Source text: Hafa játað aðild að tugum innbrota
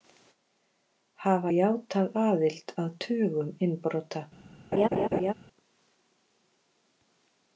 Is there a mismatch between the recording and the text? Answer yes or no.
no